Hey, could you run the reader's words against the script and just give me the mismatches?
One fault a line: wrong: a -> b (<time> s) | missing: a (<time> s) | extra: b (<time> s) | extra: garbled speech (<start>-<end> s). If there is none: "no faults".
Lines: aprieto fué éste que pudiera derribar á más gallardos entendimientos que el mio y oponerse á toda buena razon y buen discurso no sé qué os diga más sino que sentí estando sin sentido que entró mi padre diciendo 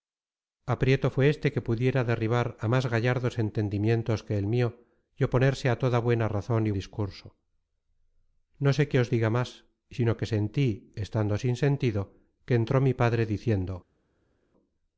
missing: buen (6.7 s)